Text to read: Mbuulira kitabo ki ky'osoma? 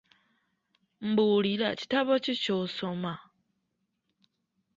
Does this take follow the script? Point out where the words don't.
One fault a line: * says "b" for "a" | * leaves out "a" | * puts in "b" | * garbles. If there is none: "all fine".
all fine